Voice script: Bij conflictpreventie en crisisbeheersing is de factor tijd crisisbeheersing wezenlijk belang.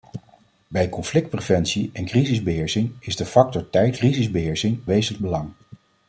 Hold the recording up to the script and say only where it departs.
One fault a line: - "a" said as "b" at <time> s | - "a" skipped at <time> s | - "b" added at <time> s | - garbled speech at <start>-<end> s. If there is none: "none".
none